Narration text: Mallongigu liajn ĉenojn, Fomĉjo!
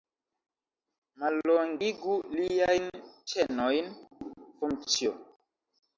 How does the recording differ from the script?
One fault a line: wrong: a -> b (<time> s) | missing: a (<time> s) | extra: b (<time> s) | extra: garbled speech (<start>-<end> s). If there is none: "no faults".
no faults